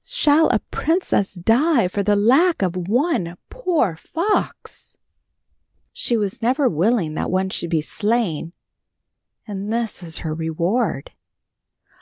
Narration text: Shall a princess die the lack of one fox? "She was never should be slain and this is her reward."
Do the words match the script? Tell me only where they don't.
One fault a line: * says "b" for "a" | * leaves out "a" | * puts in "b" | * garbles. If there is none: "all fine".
* puts in "for"
* puts in "poor"
* puts in "willing that one"